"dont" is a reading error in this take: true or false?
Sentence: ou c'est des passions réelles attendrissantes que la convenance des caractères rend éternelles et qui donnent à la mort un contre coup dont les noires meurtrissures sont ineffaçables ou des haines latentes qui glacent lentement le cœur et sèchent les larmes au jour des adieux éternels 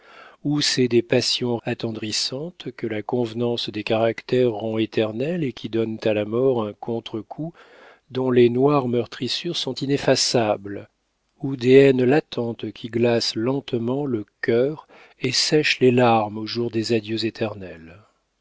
false